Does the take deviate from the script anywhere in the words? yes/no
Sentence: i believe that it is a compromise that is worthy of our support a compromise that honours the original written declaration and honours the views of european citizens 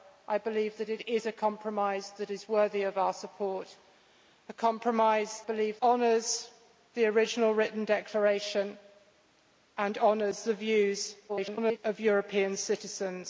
yes